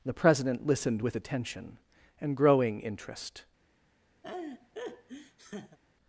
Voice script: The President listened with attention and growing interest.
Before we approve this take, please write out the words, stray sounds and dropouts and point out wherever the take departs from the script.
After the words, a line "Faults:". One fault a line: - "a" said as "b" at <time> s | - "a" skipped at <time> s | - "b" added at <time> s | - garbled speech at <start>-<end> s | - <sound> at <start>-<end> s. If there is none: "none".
The President listened with attention and growing interest.
Faults:
- laugh at 4.2-5.8 s